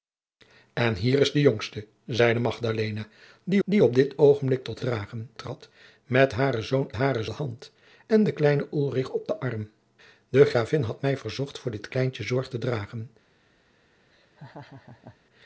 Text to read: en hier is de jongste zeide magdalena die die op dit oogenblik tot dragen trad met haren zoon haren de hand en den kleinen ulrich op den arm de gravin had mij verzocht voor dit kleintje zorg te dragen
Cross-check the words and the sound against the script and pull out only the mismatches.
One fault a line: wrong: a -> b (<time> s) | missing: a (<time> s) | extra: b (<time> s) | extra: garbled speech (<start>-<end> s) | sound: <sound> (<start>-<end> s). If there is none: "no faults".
sound: laugh (14.1-15.2 s)